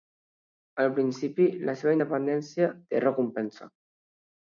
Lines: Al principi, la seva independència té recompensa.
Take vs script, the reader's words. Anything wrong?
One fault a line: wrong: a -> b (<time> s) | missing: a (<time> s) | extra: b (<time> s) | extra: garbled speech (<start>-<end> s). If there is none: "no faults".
no faults